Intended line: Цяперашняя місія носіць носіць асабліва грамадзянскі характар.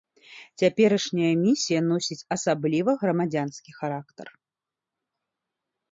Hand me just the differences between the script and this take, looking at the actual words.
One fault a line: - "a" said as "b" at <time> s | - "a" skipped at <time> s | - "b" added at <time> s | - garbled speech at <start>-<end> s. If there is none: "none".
- "носіць" skipped at 2.3 s